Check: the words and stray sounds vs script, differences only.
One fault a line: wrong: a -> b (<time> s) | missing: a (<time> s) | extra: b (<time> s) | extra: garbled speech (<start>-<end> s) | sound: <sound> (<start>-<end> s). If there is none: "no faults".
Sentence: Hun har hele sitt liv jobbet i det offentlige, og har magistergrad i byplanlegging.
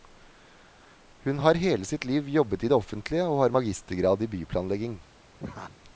sound: laugh (5.4-5.8 s)